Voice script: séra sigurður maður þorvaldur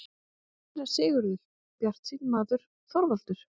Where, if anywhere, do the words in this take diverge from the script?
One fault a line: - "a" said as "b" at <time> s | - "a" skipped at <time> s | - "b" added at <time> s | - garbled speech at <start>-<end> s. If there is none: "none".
- "bjartsýnn" added at 1.8 s